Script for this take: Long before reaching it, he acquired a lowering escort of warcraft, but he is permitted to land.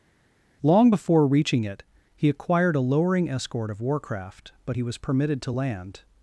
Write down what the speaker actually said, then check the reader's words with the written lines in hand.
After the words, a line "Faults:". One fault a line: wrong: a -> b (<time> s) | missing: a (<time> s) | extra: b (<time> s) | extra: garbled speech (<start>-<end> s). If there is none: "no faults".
Long before reaching it, he acquired a lowering escort of warcraft, but he was permitted to land.
Faults:
wrong: is -> was (4.8 s)